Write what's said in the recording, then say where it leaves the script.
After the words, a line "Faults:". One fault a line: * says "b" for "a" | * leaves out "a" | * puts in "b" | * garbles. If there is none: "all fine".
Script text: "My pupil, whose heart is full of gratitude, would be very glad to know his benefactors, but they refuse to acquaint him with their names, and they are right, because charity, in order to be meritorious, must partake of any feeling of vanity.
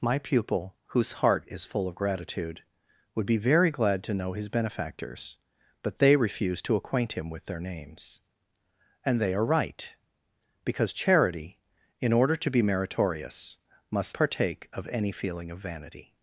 "My pupil, whose heart is full of gratitude, would be very glad to know his benefactors, but they refuse to acquaint him with their names, and they are right, because charity, in order to be meritorious, must partake of any feeling of vanity.
Faults:
all fine